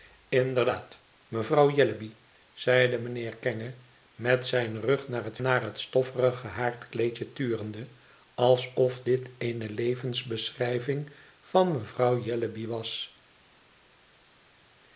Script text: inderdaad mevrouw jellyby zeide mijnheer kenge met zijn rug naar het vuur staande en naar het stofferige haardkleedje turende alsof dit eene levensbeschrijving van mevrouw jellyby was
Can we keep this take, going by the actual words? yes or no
no